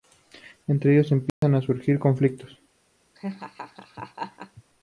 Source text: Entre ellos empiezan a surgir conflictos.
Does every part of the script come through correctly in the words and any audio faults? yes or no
no